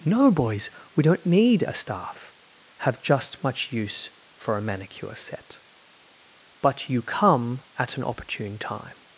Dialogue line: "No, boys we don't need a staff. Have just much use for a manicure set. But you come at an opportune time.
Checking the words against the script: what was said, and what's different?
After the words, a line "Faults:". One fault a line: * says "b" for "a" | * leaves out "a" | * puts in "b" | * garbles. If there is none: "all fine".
"No, boys we don't need a staff. Have just much use for a manicure set. But you come at an opportune time.
Faults:
all fine